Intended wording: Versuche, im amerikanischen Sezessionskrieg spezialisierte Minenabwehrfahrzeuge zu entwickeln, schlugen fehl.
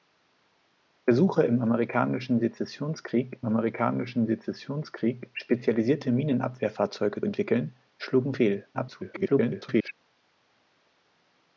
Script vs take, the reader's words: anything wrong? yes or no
yes